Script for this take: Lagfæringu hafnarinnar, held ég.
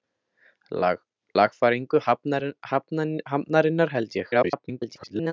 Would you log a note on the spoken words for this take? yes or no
yes